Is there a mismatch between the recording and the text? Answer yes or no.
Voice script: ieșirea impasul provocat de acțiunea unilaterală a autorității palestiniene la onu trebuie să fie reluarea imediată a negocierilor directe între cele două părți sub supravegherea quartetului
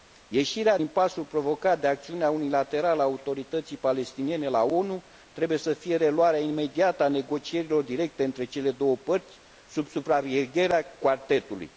no